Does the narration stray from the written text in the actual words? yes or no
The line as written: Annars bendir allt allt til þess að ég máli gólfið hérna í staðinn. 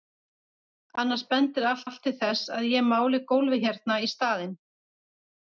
no